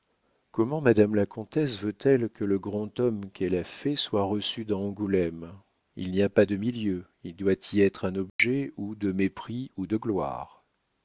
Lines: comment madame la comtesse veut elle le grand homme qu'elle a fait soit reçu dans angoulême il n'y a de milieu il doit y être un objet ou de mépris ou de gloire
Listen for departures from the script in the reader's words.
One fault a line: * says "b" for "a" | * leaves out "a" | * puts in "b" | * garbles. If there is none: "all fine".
* puts in "que"
* puts in "pas"